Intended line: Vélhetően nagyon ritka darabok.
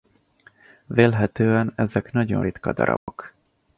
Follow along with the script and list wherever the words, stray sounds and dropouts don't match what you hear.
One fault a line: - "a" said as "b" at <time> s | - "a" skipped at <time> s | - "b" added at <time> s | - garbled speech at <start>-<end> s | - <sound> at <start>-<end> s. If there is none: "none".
- "ezek" added at 1.8 s
- dropout at 3.0-3.1 s